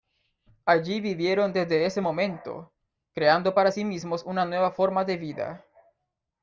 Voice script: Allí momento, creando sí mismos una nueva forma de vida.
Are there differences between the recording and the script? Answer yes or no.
yes